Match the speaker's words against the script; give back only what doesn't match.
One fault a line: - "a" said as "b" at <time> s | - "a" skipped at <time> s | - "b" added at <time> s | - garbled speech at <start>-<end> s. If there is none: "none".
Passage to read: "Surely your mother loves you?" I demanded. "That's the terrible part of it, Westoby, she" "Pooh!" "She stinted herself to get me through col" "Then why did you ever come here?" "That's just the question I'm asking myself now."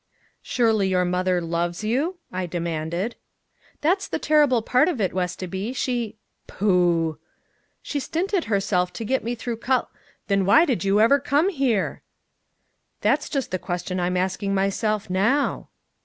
none